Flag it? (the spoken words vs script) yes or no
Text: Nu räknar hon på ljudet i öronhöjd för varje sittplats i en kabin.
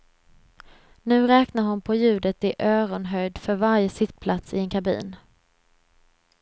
no